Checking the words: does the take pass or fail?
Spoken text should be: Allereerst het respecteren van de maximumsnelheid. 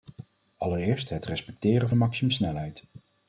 fail